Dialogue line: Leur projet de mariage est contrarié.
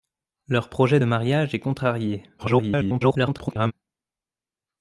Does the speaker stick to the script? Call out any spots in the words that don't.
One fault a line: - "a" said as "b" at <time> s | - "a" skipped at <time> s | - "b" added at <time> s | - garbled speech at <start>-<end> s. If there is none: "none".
- garbled speech at 2.4-3.7 s